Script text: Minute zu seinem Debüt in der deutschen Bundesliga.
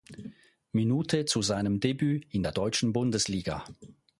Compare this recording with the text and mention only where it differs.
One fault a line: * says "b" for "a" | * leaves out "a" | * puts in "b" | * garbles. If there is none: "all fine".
all fine